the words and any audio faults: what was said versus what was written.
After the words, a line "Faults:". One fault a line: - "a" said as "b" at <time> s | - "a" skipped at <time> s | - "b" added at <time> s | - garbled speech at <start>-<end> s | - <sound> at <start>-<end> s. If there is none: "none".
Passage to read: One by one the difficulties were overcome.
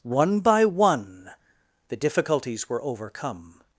One by one the difficulties were overcome.
Faults:
none